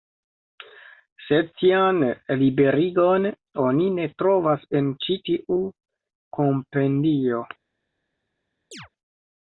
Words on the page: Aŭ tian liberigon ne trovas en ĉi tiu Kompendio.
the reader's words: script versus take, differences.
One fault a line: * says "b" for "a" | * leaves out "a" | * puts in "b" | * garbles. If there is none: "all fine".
* says "Sed" for "Aŭ"
* puts in "oni"